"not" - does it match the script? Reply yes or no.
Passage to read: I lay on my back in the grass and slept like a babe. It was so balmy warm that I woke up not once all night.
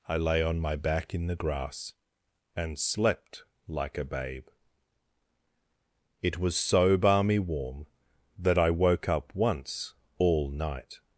no